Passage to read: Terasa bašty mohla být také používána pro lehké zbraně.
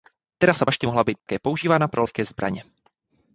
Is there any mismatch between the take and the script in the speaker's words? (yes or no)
no